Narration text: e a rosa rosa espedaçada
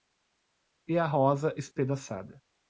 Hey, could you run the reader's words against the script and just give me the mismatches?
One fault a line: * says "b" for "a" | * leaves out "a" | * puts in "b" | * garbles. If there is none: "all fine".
* leaves out "rosa"